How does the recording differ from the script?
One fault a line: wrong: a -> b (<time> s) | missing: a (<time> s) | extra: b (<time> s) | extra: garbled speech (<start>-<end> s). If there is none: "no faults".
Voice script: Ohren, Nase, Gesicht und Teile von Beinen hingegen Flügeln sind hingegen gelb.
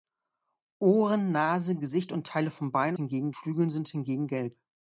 no faults